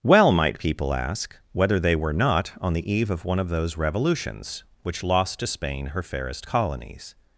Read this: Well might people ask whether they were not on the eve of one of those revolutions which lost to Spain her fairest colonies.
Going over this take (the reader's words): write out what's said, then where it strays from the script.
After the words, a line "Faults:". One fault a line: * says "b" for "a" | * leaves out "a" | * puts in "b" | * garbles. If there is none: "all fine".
Well might people ask whether they were not on the eve of one of those revolutions which lost to Spain her fairest colonies.
Faults:
all fine